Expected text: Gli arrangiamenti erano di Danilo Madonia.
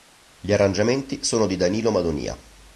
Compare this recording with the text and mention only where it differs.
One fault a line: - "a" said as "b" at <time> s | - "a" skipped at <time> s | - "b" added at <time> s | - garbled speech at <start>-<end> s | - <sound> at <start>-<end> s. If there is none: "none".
- "erano" said as "sono" at 1.2 s